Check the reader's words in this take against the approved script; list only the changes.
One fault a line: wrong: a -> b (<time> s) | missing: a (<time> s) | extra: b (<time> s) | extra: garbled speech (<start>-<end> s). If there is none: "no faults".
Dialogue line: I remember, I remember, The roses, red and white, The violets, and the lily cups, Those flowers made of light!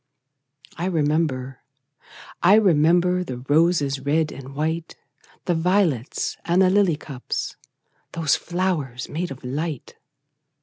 no faults